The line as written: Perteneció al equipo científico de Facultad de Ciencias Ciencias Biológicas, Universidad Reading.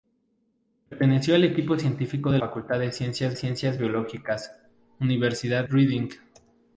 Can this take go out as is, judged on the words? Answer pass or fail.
pass